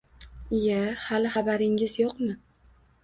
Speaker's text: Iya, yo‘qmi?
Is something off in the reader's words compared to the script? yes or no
yes